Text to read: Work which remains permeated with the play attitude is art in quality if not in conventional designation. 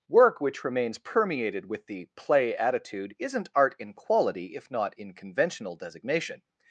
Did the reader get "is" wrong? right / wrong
wrong